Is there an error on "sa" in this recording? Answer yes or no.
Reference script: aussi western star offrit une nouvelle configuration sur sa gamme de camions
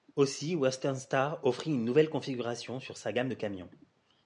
no